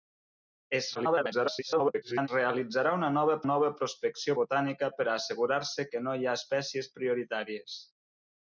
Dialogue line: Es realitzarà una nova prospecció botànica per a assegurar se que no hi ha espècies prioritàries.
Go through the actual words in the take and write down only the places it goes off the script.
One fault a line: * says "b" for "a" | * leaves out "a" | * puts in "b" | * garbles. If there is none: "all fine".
* garbles
* puts in "nova"